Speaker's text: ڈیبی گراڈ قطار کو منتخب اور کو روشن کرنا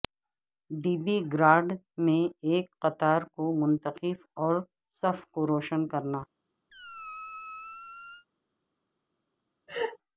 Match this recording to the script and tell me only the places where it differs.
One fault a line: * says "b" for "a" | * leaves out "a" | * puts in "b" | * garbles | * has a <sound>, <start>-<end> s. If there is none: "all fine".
* puts in "میں ایک"
* puts in "صف"
* has a squeak, 6.7-8.3 s
* has a laugh, 9.7-10.0 s